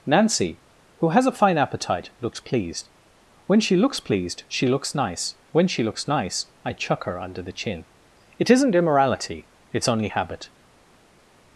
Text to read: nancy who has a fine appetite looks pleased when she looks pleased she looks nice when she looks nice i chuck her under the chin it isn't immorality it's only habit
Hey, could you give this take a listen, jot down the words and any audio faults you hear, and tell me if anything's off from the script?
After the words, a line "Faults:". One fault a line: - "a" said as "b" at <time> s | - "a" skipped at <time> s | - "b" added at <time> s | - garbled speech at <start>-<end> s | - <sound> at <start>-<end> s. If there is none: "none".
nancy who has a fine appetite looks pleased when she looks pleased she looks nice when she looks nice i chuck her under the chin it isn't immorality it's only habit
Faults:
none